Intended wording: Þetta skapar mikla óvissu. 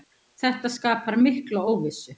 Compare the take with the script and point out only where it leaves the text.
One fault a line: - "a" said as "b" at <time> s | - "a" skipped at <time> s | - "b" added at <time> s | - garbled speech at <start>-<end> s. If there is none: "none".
none